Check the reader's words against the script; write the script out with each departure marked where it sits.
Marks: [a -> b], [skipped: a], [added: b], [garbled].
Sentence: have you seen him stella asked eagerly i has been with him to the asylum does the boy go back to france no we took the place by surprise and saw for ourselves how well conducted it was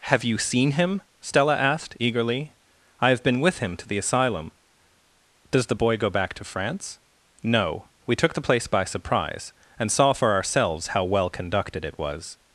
have you seen him stella asked eagerly i [has -> have] been with him to the asylum does the boy go back to france no we took the place by surprise and saw for ourselves how well conducted it was